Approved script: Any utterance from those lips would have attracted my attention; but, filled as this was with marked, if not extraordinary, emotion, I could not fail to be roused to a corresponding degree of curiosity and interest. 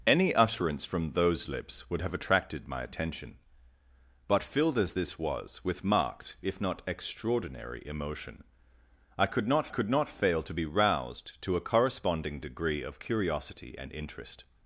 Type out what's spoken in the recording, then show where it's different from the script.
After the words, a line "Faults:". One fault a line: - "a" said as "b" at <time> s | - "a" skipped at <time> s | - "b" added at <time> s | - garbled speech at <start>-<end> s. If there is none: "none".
Any utterance from those lips would have attracted my attention; but, filled as this was with marked, if not extraordinary, emotion, I could not could not fail to be roused to a corresponding degree of curiosity and interest.
Faults:
- "could not" added at 9.7 s